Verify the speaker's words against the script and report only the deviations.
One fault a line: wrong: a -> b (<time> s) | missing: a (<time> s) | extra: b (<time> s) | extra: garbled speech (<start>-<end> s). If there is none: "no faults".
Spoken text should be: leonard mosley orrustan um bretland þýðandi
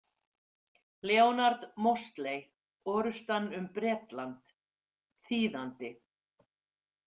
no faults